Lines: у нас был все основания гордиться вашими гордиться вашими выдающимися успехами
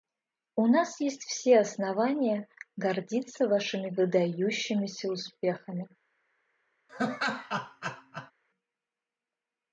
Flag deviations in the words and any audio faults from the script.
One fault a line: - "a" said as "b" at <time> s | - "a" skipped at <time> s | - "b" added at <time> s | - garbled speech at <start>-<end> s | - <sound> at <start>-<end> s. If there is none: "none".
- "был" said as "есть" at 1.0 s
- "гордиться вашими" skipped at 3.9 s
- laugh at 6.9-8.3 s